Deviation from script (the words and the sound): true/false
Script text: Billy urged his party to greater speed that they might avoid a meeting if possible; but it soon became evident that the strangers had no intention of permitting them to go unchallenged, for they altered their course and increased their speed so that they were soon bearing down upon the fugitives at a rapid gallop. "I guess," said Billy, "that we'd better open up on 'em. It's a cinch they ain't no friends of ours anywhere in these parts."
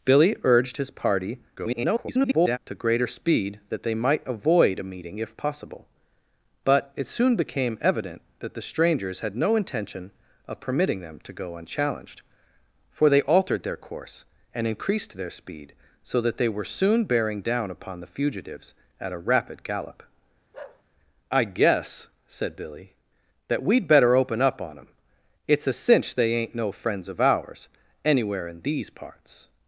true